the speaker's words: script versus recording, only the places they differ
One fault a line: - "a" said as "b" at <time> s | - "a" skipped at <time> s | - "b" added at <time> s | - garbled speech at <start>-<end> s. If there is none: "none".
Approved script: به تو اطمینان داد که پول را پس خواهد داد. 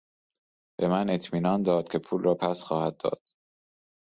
- "تو" said as "من" at 0.9 s